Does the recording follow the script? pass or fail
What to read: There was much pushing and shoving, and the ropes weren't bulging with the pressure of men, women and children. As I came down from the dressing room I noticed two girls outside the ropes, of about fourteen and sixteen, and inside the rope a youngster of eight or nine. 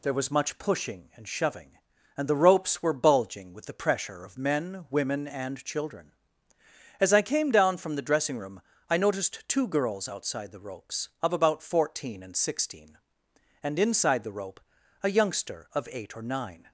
fail